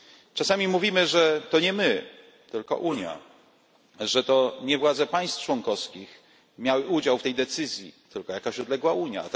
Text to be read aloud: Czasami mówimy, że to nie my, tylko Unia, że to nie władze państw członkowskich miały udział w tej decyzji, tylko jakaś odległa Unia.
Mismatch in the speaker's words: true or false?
false